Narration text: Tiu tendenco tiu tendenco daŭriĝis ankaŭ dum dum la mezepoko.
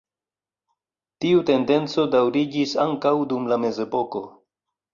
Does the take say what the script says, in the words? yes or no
no